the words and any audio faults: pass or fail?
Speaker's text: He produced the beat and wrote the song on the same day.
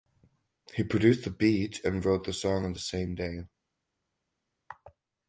pass